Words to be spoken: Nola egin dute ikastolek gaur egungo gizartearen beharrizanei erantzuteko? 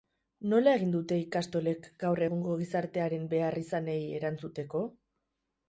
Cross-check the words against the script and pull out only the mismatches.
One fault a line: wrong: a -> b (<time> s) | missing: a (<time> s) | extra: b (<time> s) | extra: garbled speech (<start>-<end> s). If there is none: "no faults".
no faults